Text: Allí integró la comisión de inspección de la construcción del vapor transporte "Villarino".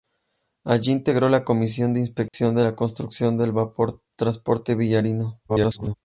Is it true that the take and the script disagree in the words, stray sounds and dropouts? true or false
true